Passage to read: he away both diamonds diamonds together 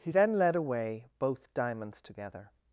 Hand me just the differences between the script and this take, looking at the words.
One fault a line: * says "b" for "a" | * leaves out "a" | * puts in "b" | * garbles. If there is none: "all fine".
* puts in "then led"
* leaves out "diamonds"